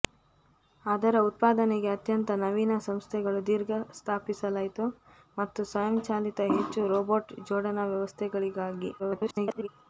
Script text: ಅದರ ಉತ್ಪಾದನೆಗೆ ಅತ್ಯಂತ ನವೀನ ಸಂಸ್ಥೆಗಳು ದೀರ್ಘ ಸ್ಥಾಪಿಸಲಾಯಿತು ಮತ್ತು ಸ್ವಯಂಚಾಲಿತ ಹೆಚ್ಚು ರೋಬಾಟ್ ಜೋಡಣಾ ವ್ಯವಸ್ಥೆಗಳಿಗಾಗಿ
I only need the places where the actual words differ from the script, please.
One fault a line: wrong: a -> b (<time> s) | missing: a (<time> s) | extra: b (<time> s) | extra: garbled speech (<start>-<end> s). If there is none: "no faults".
extra: garbled speech (9.0-9.7 s)